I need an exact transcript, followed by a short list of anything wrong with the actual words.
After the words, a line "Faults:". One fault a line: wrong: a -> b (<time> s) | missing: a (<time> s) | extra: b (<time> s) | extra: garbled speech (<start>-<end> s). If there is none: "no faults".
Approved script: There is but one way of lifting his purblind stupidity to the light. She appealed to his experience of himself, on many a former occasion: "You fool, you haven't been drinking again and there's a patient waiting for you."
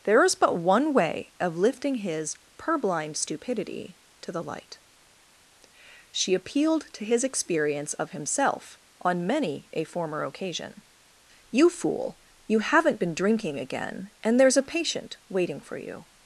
There is but one way of lifting his purblind stupidity to the light. She appealed to his experience of himself, on many a former occasion: "You fool, you haven't been drinking again and there's a patient waiting for you."
Faults:
no faults